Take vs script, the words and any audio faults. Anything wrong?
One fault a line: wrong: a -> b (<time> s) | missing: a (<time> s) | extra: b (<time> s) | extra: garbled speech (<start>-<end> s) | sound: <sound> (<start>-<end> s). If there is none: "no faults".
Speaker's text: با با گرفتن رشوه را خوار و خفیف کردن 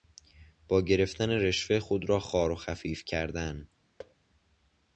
missing: با (0.8 s)
extra: خود (1.8 s)
sound: thud (4.0-4.2 s)